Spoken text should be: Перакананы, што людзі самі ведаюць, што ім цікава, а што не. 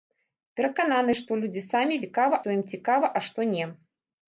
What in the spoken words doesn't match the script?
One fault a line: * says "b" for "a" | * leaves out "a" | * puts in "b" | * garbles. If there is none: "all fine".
* says "цікава" for "ведаюць"